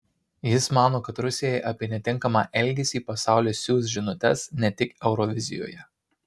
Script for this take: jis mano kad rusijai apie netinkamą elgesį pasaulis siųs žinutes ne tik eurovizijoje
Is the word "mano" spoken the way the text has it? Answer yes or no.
yes